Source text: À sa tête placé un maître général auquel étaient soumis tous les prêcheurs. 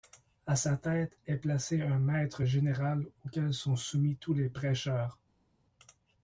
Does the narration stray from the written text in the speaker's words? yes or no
yes